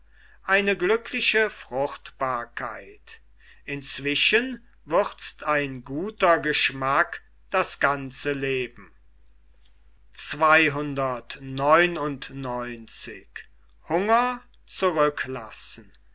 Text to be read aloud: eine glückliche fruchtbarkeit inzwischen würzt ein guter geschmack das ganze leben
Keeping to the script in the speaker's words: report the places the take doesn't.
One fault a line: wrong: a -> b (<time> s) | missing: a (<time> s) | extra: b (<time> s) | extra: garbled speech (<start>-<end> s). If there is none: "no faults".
no faults